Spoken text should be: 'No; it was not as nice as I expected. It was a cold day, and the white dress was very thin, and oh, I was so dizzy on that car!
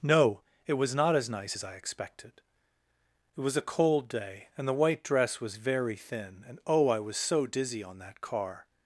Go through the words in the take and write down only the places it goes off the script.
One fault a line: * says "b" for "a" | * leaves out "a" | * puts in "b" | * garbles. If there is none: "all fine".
all fine